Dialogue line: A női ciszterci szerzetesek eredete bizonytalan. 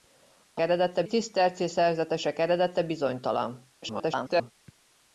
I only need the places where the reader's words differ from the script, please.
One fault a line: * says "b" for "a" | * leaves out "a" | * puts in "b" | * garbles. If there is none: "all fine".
* says "eredete" for "női"
* garbles